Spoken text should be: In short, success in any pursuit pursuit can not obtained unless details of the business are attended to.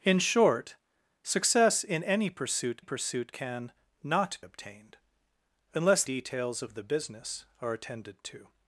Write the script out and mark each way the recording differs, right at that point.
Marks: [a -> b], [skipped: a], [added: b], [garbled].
In short, success in any pursuit pursuit can not obtained unless details of the business are attended to.